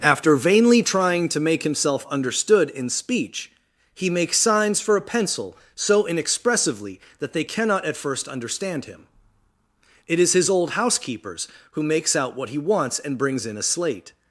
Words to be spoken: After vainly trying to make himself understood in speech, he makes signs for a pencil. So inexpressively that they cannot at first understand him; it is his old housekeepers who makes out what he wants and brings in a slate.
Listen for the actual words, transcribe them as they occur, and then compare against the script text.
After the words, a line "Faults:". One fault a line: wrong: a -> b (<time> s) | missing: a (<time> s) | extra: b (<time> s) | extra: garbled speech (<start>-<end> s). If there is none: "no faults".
After vainly trying to make himself understood in speech, he makes signs for a pencil. So inexpressively that they cannot at first understand him; it is his old housekeepers who makes out what he wants and brings in a slate.
Faults:
no faults